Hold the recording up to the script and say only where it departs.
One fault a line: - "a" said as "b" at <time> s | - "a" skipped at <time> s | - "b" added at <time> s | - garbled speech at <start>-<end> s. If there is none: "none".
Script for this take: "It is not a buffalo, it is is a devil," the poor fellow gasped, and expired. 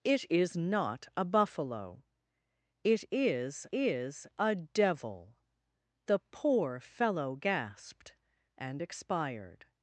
none